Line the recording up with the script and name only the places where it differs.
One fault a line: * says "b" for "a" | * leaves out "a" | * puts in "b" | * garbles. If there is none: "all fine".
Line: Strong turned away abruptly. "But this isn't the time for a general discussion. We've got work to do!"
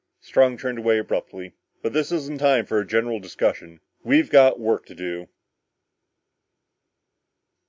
all fine